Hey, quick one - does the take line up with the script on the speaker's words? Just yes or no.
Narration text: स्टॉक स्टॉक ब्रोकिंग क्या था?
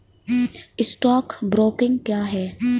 no